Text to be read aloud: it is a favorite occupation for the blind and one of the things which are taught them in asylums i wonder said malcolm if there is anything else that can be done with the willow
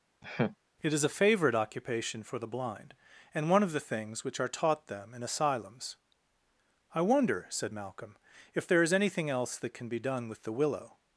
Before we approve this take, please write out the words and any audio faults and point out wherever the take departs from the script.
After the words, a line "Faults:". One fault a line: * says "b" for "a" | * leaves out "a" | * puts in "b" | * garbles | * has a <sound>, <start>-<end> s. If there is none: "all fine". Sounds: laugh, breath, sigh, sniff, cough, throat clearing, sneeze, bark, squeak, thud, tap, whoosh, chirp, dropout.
it is a favorite occupation for the blind and one of the things which are taught them in asylums i wonder said malcolm if there is anything else that can be done with the willow
Faults:
* has a laugh, 0.2-0.6 s